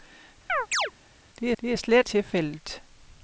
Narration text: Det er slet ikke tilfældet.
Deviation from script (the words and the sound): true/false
true